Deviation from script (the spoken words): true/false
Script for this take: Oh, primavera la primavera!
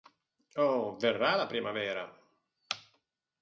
true